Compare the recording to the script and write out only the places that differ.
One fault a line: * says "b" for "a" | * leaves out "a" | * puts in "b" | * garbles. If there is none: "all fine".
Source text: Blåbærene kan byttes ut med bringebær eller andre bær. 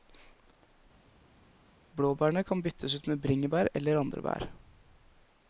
all fine